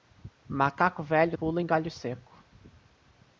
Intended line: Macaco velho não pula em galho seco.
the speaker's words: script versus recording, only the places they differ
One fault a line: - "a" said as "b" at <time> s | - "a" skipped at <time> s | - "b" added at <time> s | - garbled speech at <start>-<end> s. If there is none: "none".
- "não" skipped at 1.4 s